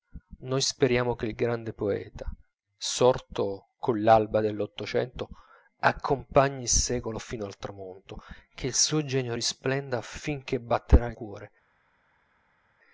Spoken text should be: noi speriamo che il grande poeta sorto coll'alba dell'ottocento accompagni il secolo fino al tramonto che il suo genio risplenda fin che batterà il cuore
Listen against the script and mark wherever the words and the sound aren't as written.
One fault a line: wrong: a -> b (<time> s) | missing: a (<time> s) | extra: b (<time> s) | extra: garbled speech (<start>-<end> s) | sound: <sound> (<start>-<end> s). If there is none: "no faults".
no faults